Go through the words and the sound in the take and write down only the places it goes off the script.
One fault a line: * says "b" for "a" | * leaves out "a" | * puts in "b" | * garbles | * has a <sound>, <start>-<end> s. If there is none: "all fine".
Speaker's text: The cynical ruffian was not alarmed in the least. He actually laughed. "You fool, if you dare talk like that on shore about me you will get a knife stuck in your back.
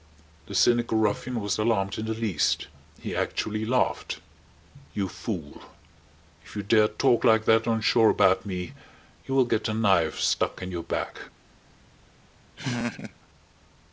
* leaves out "not"
* has a laugh, 12.6-13.1 s